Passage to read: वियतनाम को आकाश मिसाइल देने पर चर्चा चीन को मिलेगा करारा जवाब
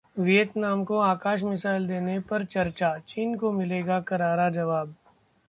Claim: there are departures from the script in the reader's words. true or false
false